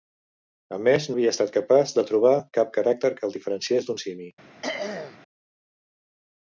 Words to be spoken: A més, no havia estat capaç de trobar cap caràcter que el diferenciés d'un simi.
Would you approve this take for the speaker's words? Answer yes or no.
no